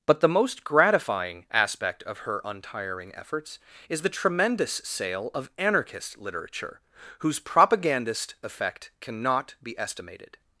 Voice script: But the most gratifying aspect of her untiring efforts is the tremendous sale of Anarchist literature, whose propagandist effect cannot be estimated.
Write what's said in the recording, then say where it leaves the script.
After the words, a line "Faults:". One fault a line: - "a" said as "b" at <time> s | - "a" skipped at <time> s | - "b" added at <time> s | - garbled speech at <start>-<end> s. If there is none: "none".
But the most gratifying aspect of her untiring efforts is the tremendous sale of Anarchist literature, whose propagandist effect cannot be estimated.
Faults:
none